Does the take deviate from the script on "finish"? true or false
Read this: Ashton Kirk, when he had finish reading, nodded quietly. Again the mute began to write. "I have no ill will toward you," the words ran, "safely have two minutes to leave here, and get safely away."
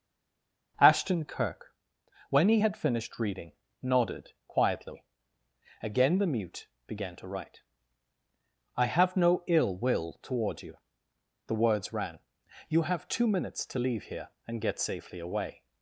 true